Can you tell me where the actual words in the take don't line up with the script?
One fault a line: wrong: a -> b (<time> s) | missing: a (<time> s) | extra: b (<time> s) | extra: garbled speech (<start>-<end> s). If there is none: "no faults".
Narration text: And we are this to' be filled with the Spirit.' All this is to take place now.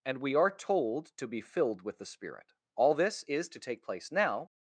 wrong: this -> told (0.5 s)